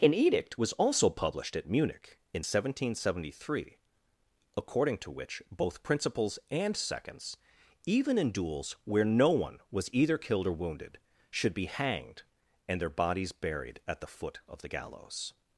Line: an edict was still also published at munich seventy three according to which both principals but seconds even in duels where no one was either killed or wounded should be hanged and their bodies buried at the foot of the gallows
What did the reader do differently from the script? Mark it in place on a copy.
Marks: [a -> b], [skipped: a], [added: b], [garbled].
an edict was [skipped: still] also published at munich [added: in seventeen] seventy three according to which both principals [but -> and] seconds even in duels where no one was either killed or wounded should be hanged and their bodies buried at the foot of the gallows